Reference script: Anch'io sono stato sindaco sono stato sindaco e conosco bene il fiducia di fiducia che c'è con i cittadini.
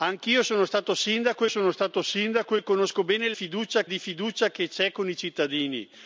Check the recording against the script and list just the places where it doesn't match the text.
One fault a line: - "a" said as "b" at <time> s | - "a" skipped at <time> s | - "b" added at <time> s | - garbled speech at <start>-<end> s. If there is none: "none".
none